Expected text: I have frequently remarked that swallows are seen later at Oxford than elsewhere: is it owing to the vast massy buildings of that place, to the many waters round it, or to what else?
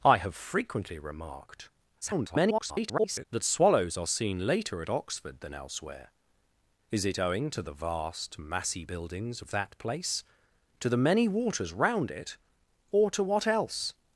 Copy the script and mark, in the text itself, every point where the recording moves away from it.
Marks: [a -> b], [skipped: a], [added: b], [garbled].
I have frequently remarked [garbled] that swallows are seen later at Oxford than elsewhere: is it owing to the vast massy buildings of that place, to the many waters round it, or to what else?